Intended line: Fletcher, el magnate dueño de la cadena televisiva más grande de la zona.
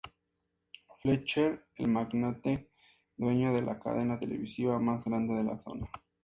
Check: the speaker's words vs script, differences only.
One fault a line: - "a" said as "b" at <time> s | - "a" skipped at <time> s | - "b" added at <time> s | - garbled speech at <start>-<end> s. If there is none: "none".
none